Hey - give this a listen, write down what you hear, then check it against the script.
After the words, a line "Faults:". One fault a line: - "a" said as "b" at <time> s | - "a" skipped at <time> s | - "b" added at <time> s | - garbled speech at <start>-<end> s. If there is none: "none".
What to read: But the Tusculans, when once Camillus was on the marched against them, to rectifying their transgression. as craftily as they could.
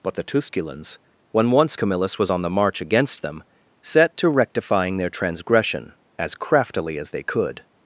But the Tusculans, when once Camillus was on the march against them, set to rectifying their transgression. as craftily as they could.
Faults:
- "marched" said as "march" at 2.5 s
- "set" added at 3.8 s